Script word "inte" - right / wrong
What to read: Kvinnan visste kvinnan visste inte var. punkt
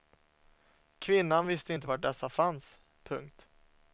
wrong